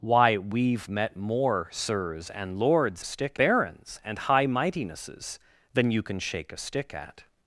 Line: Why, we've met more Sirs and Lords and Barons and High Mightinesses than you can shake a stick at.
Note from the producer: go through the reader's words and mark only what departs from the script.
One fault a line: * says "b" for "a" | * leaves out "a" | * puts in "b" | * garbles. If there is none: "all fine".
* says "stick" for "and"